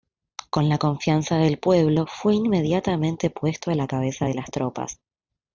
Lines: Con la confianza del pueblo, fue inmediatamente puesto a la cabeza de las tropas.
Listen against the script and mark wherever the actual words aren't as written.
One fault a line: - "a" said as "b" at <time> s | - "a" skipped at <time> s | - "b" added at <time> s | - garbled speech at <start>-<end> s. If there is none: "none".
none